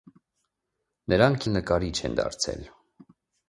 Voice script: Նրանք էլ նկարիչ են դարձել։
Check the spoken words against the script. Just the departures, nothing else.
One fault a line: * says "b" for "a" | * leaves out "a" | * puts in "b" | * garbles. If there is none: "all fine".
all fine